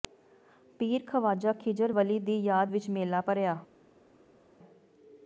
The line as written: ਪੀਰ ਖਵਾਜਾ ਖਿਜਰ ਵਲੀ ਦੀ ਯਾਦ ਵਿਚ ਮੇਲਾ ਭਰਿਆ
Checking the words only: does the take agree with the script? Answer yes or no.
yes